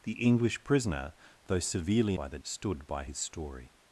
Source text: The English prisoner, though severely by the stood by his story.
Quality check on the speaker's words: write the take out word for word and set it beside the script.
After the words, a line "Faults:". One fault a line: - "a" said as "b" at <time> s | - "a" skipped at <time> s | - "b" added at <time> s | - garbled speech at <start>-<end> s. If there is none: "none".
The English prisoner, though severely by the stood by his story.
Faults:
none